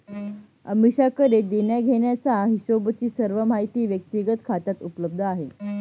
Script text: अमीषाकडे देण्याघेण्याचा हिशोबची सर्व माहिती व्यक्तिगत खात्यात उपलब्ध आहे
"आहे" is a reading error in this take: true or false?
false